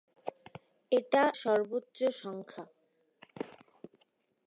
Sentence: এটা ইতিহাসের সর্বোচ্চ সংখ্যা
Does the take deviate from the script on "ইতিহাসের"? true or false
true